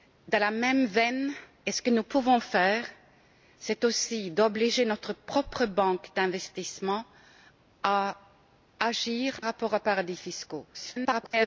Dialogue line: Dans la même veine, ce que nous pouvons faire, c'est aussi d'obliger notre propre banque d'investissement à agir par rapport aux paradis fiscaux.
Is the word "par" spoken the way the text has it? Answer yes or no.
no